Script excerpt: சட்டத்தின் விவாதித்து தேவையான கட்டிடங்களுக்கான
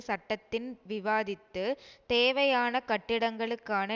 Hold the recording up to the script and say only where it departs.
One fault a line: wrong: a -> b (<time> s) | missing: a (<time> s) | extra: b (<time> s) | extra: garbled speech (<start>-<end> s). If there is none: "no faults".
no faults